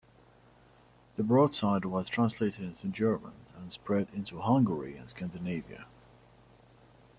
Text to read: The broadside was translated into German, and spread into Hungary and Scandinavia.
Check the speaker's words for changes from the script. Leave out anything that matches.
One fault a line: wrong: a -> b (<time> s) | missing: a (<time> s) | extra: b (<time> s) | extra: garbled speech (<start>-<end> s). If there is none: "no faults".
no faults